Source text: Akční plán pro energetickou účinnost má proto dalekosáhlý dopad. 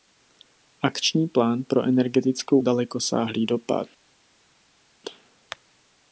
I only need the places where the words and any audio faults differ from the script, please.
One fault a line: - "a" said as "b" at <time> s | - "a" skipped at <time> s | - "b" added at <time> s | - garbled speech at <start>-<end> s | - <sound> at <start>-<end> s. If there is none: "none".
- "účinnost má proto" skipped at 2.6 s